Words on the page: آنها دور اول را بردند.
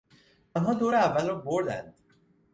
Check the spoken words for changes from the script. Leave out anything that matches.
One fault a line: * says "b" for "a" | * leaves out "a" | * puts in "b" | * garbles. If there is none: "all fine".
all fine